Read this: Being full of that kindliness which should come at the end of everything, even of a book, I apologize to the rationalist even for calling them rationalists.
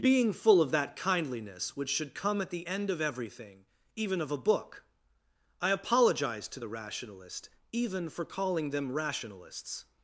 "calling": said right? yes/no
yes